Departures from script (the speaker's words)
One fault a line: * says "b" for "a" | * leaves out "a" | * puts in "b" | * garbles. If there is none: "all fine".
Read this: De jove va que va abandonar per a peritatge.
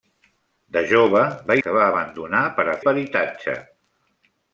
all fine